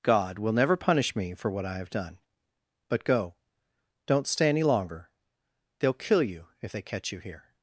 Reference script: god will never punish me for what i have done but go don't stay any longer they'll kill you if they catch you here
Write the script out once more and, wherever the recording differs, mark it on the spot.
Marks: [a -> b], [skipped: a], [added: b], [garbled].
god will never punish me for what i have done but go don't stay any longer they'll kill you if they catch you here